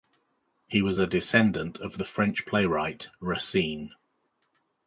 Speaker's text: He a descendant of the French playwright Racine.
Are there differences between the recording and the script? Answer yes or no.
yes